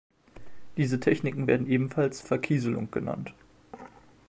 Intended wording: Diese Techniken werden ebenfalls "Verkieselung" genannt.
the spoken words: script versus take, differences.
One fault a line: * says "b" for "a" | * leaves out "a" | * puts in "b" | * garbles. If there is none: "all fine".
all fine